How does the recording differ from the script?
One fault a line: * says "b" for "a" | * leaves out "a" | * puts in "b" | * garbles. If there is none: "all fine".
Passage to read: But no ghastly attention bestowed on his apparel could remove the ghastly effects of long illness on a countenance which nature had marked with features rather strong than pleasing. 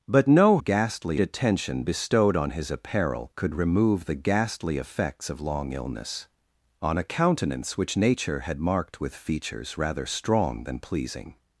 all fine